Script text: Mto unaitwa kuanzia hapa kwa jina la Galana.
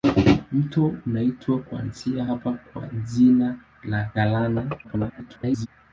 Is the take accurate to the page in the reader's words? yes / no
no